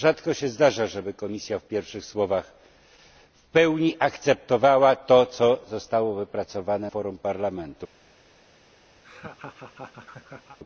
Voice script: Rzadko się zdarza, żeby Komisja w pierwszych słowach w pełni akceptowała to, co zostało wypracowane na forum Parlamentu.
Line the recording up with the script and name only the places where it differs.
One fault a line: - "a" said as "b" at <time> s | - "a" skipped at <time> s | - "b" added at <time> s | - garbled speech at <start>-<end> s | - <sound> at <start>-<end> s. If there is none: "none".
- "na" skipped at 6.9 s
- laugh at 9.0-10.6 s